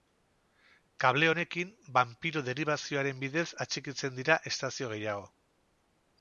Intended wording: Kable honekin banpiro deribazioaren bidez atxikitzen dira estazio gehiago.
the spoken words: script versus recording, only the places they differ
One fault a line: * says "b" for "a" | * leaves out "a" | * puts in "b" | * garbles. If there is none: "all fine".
all fine